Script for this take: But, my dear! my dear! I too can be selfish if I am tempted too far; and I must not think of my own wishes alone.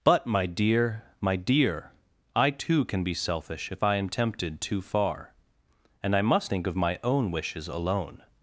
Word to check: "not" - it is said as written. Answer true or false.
false